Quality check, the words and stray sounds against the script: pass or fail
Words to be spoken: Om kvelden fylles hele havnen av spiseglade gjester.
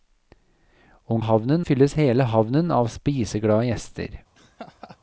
fail